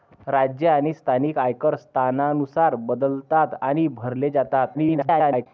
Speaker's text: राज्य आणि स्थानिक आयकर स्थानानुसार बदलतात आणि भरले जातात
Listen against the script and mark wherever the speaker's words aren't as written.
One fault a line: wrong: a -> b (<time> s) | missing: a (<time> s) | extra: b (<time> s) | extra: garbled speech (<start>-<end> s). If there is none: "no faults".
extra: garbled speech (4.7-5.5 s)